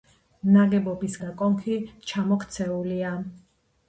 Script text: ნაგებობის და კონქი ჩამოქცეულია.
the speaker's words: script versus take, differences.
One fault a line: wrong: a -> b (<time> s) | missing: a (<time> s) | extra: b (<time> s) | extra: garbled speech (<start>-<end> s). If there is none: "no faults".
no faults